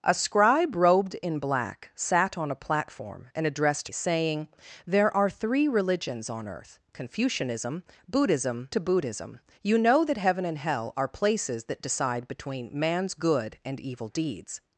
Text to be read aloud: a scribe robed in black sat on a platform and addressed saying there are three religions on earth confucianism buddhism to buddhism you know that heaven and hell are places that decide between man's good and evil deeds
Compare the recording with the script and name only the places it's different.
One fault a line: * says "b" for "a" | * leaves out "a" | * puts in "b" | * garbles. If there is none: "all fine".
all fine